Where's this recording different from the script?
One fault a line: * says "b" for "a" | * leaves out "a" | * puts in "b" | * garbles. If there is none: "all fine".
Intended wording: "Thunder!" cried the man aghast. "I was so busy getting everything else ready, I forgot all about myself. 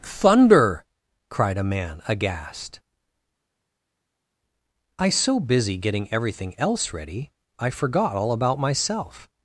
* says "a" for "the"
* leaves out "was"